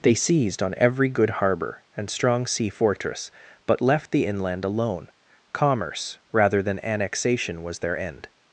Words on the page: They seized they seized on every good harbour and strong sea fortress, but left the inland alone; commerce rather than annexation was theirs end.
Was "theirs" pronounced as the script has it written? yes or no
no